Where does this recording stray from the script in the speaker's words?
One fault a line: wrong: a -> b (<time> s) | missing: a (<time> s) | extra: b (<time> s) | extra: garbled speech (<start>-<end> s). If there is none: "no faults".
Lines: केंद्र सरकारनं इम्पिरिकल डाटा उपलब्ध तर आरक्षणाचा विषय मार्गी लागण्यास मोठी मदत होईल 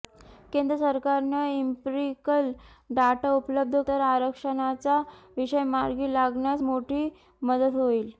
no faults